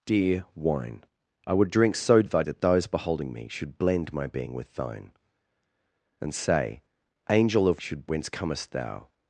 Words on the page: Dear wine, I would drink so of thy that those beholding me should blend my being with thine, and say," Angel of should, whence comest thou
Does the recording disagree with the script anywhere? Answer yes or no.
no